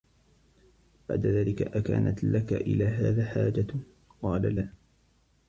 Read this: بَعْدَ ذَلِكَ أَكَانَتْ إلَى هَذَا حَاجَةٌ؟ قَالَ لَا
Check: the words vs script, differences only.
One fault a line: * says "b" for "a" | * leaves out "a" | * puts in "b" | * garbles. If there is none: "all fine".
* puts in "لَك"